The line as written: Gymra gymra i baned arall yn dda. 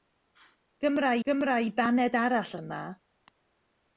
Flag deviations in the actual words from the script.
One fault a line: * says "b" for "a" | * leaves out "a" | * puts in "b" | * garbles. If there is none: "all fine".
all fine